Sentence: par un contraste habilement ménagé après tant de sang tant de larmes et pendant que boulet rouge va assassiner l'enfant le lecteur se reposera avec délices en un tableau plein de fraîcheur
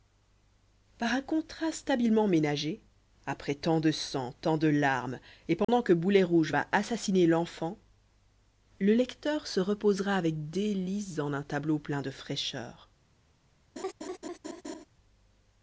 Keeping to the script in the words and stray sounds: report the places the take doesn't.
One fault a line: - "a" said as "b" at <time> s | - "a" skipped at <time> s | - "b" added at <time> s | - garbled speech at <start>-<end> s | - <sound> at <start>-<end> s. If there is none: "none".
- dropout at 5.6-5.7 s
- laugh at 13.8-14.9 s